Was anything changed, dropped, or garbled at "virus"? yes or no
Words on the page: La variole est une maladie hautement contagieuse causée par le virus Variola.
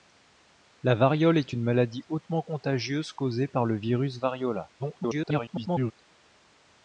no